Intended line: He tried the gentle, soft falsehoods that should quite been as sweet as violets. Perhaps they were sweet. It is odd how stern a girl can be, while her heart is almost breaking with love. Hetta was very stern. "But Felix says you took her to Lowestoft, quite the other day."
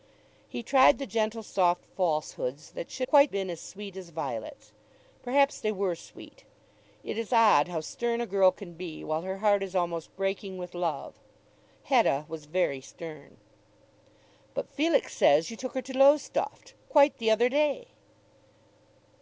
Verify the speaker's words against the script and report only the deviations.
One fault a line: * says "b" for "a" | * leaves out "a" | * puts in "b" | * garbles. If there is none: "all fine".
all fine